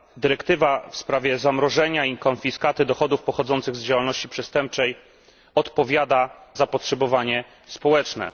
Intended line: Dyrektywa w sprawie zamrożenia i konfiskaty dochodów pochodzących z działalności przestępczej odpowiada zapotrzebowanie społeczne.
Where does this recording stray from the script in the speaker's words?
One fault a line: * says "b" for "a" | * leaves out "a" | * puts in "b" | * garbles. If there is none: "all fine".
all fine